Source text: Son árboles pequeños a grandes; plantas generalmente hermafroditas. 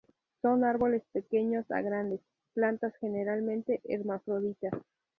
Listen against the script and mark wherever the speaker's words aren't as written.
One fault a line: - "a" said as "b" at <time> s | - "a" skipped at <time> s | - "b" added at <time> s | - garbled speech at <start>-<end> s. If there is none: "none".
none